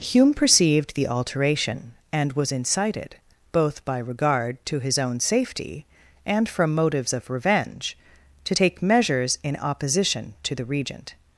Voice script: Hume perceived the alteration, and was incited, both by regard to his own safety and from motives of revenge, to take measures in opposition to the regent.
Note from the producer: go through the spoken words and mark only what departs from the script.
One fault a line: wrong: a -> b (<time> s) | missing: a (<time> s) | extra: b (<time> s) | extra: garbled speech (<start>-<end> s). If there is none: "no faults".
no faults